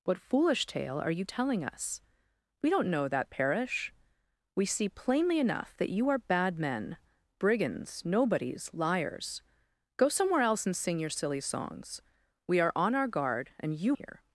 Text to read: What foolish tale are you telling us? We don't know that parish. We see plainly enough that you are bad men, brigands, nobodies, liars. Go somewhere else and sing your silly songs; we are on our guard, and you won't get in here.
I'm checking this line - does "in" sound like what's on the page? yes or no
no